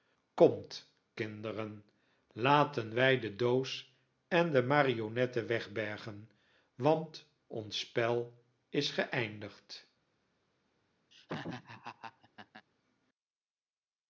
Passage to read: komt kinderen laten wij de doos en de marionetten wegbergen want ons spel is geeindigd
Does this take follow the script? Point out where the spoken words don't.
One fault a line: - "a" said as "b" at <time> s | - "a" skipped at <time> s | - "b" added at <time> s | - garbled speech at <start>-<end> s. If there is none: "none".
none